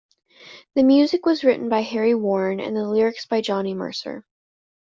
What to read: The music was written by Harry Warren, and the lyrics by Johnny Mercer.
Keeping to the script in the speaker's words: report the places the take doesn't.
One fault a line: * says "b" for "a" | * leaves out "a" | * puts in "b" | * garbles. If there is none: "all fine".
all fine